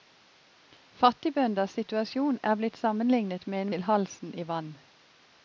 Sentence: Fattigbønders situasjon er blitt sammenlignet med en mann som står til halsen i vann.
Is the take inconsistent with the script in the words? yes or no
yes